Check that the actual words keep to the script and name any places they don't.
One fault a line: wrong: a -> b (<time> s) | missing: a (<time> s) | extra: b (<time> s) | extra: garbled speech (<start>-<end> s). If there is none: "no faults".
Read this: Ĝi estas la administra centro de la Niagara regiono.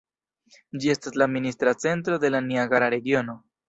no faults